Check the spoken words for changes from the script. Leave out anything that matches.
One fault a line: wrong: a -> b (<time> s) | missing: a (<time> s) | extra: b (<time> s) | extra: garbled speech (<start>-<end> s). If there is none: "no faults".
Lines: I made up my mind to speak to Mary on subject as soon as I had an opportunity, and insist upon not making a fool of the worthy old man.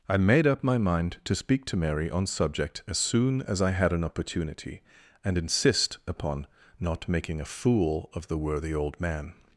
no faults